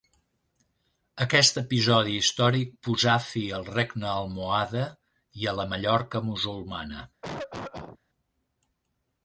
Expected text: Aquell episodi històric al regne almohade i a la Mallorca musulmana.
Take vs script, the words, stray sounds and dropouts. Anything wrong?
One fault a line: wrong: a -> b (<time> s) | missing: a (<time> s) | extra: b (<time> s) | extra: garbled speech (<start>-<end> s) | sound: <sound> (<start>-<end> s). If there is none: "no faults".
wrong: Aquell -> Aquest (1.2 s)
extra: posà fi (2.9 s)
sound: cough (7.2-8.0 s)